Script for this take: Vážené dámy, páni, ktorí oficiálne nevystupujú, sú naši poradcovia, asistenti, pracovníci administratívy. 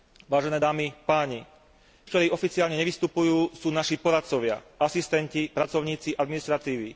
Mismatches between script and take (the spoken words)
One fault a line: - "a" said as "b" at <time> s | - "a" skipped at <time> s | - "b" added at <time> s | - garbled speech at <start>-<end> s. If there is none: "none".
none